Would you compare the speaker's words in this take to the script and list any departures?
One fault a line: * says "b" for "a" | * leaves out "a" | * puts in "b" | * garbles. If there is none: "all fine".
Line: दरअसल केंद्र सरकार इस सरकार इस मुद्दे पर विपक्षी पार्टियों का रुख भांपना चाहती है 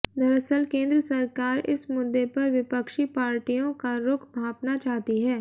* leaves out "सरकार इस"